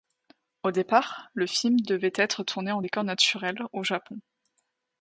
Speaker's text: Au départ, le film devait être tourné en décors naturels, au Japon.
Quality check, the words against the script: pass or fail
pass